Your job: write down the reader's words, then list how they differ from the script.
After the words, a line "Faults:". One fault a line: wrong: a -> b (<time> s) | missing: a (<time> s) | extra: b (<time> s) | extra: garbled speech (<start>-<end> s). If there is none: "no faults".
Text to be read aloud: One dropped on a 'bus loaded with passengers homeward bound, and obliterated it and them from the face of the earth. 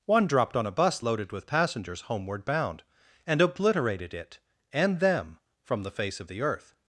One dropped on a 'bus loaded with passengers homeward bound, and obliterated it and them from the face of the earth.
Faults:
no faults